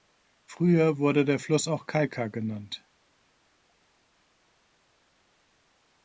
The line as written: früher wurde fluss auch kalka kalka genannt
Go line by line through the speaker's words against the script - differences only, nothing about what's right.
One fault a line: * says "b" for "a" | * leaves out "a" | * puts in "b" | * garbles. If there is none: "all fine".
* puts in "der"
* leaves out "kalka"